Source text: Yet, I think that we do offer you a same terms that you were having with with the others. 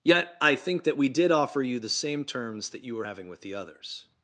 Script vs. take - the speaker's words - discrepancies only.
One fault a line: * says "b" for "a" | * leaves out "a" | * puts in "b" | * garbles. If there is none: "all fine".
* says "did" for "do"
* says "the" for "a"
* leaves out "with"